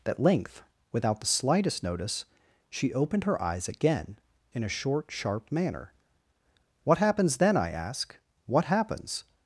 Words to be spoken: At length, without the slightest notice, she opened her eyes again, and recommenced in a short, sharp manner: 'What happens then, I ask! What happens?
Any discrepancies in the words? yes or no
yes